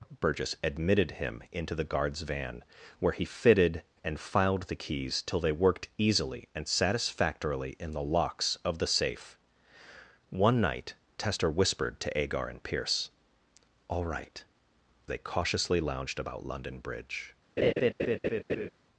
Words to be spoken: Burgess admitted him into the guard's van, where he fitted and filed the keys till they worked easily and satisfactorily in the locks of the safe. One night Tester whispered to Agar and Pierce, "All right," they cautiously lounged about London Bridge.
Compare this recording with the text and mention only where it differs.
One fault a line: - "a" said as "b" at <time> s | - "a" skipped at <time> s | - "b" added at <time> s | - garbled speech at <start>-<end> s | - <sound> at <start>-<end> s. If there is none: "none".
- laugh at 17.6-18.7 s